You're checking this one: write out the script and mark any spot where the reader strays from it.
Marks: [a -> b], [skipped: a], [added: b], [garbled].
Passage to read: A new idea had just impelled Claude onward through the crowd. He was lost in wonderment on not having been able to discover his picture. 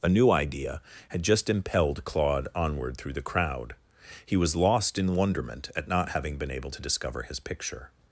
A new idea had just impelled Claude onward through the crowd. He was lost in wonderment [on -> at] not having been able to discover his picture.